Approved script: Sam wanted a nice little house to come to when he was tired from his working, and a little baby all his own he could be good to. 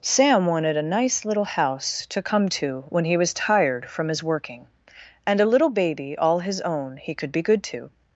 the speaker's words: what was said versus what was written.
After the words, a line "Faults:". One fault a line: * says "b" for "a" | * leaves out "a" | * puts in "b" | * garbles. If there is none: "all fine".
Sam wanted a nice little house to come to when he was tired from his working, and a little baby all his own he could be good to.
Faults:
all fine